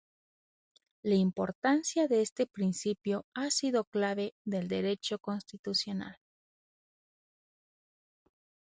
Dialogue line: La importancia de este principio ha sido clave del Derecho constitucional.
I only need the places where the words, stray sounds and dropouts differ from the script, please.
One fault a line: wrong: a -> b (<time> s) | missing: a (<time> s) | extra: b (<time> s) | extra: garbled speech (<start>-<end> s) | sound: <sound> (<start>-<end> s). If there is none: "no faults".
no faults